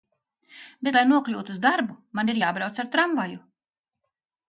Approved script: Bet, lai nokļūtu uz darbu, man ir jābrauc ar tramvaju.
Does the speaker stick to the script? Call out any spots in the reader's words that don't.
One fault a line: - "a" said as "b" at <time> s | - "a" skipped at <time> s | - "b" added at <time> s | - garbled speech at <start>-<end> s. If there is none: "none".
none